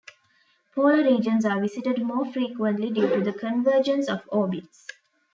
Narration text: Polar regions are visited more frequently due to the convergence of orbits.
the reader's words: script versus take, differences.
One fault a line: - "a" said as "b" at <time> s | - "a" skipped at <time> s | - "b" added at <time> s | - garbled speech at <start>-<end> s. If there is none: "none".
none